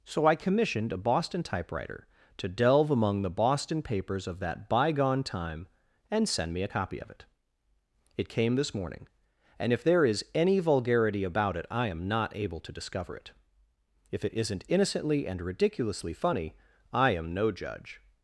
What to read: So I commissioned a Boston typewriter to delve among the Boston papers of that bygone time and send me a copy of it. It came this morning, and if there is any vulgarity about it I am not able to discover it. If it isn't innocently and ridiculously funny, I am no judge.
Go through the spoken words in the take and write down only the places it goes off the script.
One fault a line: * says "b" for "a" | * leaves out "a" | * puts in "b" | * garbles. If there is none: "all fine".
all fine